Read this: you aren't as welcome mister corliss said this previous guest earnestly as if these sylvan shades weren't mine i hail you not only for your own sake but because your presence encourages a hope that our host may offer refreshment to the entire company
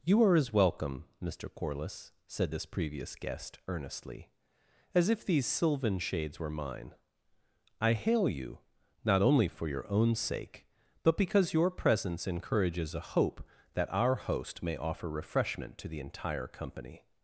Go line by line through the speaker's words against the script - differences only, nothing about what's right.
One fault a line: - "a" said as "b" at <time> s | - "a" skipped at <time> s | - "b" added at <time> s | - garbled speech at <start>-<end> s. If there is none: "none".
- "aren't" said as "are" at 0.2 s
- "weren't" said as "were" at 6.4 s